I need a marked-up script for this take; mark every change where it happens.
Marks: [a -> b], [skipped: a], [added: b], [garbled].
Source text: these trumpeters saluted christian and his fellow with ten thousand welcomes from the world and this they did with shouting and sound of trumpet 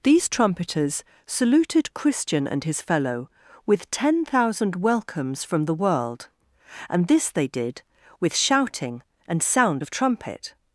these trumpeters saluted christian and his fellow with ten thousand welcomes from the world and this they did with shouting and sound of trumpet